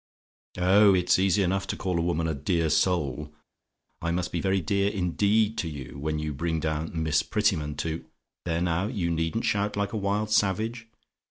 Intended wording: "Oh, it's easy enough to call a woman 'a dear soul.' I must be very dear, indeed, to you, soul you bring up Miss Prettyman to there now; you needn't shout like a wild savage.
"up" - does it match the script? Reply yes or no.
no